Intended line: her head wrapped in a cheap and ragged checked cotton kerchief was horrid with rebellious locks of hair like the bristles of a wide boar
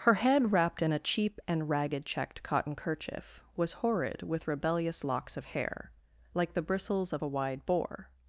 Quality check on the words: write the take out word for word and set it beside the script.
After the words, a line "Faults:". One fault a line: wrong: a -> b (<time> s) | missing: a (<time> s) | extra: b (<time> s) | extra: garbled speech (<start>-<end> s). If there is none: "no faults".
her head wrapped in a cheap and ragged checked cotton kerchief was horrid with rebellious locks of hair like the bristles of a wide boar
Faults:
no faults